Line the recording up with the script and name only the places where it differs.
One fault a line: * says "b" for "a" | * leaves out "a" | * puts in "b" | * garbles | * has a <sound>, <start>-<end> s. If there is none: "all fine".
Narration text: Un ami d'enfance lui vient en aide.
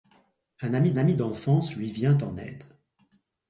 * puts in "ami"